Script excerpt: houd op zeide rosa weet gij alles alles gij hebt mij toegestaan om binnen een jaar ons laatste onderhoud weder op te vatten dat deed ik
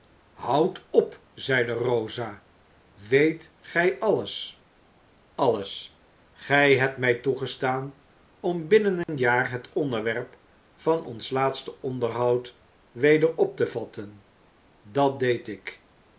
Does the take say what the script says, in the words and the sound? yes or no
no